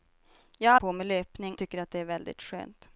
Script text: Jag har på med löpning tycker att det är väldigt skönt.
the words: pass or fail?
pass